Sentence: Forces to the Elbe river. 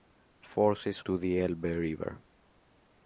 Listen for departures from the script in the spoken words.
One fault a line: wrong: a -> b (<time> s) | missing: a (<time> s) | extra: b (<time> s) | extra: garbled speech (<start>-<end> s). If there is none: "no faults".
no faults